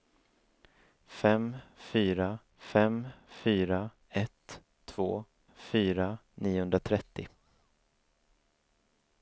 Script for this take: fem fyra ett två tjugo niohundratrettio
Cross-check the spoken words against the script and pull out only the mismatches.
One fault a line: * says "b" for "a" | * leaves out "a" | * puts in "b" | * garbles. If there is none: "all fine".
* puts in "fem fyra"
* says "fyra" for "tjugo"